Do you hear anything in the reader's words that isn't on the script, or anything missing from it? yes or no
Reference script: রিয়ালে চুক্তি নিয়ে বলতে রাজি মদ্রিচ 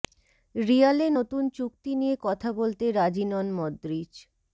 yes